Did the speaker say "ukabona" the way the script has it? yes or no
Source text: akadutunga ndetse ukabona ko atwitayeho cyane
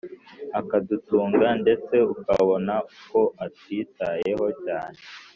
yes